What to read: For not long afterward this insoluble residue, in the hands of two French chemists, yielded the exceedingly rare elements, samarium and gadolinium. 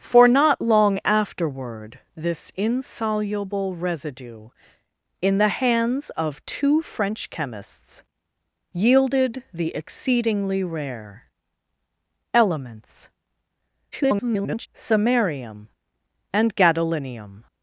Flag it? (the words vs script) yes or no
yes